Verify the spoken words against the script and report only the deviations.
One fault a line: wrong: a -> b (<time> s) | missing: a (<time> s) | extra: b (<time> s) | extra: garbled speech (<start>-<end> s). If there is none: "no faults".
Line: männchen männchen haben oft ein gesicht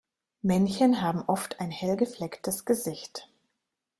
missing: männchen (1.0 s)
extra: hell geflecktes (1.7 s)